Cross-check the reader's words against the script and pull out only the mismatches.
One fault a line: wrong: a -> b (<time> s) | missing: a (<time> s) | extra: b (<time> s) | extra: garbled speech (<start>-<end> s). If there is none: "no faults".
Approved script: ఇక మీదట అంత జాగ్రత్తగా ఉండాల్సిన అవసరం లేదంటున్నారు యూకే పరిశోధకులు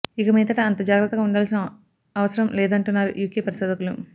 no faults